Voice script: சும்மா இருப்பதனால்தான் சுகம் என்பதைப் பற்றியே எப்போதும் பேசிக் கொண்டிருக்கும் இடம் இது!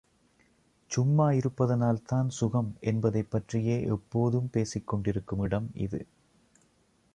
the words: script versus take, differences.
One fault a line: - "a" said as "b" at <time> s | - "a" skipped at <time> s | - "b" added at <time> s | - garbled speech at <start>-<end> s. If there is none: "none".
none